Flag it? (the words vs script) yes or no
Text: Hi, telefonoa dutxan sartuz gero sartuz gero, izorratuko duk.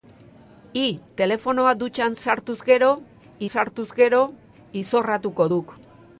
no